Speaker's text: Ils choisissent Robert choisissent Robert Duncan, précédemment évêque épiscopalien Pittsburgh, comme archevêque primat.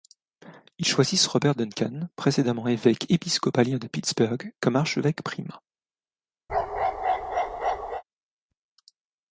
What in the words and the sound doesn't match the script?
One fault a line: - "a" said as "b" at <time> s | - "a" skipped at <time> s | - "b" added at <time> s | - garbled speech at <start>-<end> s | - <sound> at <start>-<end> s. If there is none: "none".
- "choisissent Robert" skipped at 1.5 s
- "de" added at 3.8 s
- bark at 6.5-8.0 s